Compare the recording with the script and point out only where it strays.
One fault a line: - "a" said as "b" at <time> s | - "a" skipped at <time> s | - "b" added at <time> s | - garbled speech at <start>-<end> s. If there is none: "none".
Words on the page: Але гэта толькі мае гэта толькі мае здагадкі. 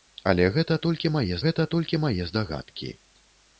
none